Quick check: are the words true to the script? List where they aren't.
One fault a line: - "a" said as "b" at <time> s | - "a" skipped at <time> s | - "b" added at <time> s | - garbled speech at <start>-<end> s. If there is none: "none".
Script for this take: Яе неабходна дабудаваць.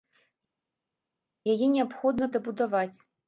none